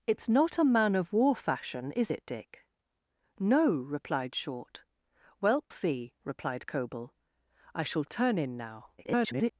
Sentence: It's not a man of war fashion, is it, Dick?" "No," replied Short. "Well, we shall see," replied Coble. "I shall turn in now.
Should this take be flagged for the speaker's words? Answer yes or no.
yes